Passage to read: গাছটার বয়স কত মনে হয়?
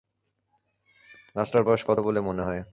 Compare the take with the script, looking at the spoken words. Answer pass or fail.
fail